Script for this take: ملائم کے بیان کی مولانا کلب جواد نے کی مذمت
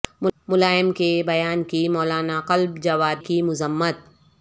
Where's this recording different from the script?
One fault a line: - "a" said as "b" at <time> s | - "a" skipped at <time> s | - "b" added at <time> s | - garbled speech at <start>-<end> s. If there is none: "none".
- "نے" skipped at 3.2 s